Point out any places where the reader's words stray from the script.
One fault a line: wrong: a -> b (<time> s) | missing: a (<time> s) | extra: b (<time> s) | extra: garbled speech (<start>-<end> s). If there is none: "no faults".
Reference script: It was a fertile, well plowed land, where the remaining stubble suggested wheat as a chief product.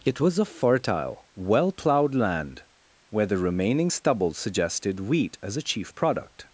no faults